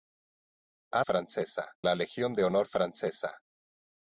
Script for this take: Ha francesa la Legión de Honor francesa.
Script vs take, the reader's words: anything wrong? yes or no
no